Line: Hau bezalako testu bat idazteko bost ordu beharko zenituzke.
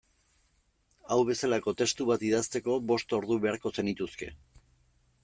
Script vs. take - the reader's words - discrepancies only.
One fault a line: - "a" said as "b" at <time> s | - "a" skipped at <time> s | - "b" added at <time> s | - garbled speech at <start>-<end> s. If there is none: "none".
none